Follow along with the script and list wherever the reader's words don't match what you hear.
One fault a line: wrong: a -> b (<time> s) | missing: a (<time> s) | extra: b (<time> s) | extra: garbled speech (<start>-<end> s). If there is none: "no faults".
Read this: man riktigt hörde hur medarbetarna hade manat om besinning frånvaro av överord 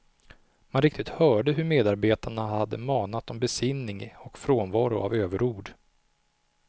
extra: och (4.2 s)